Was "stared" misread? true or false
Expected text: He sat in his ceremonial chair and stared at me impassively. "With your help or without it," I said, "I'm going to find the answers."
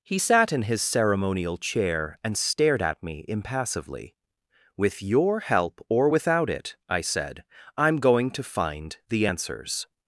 false